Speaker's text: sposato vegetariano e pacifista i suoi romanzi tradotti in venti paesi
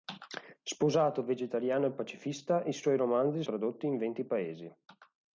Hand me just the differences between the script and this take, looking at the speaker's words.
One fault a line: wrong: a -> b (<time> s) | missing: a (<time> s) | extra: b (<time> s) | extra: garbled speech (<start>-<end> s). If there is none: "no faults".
no faults